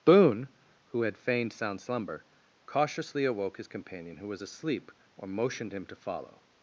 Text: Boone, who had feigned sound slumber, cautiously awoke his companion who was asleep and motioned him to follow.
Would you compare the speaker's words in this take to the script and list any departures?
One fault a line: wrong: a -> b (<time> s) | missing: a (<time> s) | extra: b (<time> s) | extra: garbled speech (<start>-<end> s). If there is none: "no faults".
wrong: and -> or (5.2 s)